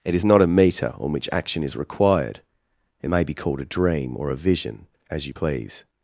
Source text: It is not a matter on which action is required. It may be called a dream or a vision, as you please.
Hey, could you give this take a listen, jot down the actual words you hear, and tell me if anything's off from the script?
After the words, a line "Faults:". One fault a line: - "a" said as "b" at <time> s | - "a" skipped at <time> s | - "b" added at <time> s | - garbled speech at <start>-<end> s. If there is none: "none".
It is not a meter on which action is required. It may be called a dream or a vision, as you please.
Faults:
- "matter" said as "meter" at 0.5 s